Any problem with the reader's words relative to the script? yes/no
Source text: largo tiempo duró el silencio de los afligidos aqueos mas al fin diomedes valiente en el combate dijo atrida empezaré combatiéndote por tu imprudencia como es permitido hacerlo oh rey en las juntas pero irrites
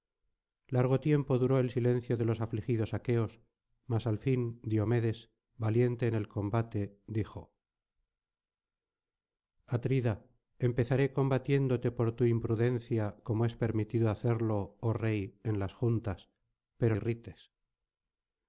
no